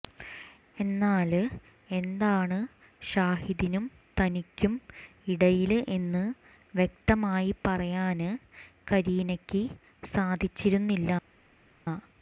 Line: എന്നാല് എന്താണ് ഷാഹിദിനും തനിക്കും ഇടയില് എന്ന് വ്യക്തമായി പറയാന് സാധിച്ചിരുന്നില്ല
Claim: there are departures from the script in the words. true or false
true